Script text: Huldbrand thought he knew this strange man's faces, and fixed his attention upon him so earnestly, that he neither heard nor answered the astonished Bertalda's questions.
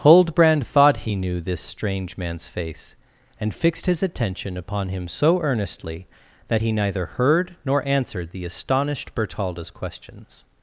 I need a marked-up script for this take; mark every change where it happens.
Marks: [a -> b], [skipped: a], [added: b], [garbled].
Huldbrand thought he knew this strange man's [faces, -> face] and fixed his attention upon him so earnestly, that he neither heard nor answered the astonished Bertalda's questions.